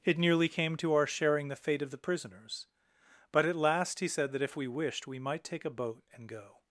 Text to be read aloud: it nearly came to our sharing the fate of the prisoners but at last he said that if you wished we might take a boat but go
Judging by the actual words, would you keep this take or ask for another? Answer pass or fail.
fail